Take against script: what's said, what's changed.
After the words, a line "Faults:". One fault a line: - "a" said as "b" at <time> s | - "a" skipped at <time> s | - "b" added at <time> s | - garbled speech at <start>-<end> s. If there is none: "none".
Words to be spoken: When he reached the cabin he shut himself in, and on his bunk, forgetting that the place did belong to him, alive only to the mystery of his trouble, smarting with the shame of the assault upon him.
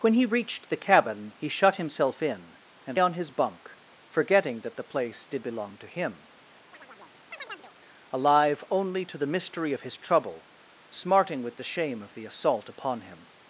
When he reached the cabin he shut himself in, and on his bunk, forgetting that the place did belong to him, alive only to the mystery of his trouble, smarting with the shame of the assault upon him.
Faults:
none